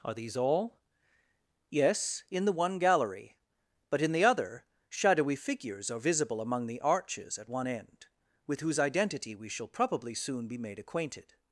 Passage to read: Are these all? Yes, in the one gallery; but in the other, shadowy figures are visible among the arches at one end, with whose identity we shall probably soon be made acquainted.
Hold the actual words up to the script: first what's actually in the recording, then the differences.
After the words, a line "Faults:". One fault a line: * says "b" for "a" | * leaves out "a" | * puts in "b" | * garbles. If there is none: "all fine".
Are these all? Yes, in the one gallery; but in the other, shadowy figures are visible among the arches at one end, with whose identity we shall probably soon be made acquainted.
Faults:
all fine